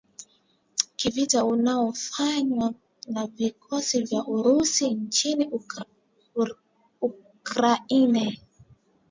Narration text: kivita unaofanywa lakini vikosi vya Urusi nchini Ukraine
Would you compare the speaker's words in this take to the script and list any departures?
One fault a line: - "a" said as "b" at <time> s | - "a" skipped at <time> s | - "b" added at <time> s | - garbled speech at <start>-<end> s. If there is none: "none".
- "lakini" said as "na" at 3.1 s